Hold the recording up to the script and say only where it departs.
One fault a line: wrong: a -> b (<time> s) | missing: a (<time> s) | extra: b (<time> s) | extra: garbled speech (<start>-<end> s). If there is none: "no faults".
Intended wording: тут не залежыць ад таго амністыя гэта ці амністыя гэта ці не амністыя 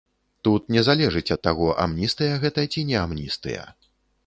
missing: амністыя гэта ці (2.9 s)